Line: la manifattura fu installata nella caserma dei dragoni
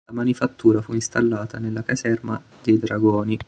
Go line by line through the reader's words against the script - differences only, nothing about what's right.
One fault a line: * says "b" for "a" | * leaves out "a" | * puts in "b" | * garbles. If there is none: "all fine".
all fine